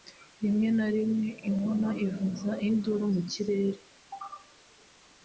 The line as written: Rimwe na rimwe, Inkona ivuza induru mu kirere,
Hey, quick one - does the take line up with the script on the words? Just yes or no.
yes